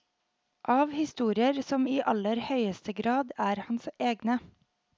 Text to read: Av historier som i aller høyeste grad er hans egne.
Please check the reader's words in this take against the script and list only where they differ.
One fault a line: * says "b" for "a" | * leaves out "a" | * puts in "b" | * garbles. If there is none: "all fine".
all fine